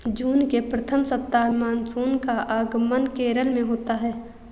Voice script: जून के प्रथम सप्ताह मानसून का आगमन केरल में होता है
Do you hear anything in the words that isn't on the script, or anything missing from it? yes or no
no